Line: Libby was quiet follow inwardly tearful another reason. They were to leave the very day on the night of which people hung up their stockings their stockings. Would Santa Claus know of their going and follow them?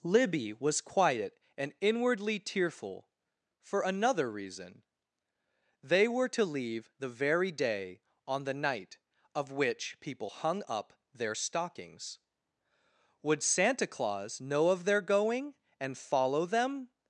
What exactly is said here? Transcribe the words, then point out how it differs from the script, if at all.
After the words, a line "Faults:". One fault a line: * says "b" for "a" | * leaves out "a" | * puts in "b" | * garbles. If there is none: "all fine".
Libby was quiet and inwardly tearful for another reason. They were to leave the very day on the night of which people hung up their stockings. Would Santa Claus know of their going and follow them?
Faults:
* says "and" for "follow"
* puts in "for"
* leaves out "their stockings"